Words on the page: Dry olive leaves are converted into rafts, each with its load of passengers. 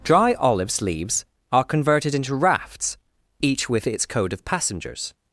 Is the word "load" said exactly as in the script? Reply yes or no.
no